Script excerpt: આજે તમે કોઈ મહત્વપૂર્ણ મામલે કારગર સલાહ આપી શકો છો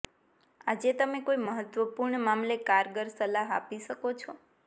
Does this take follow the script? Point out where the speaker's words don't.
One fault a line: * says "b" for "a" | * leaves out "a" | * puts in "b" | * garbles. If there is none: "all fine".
all fine